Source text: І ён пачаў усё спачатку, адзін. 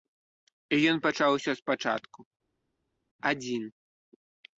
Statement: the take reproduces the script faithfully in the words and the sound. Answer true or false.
true